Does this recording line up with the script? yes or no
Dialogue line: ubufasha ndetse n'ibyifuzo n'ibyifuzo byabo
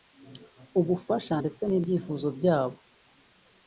no